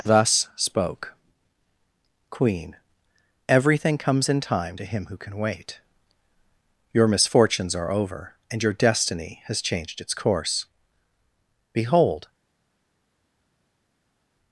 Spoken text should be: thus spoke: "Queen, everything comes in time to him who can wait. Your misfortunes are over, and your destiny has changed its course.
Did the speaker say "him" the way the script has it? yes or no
yes